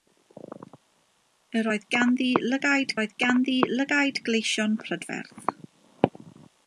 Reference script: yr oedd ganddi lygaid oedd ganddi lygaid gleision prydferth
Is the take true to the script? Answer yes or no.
yes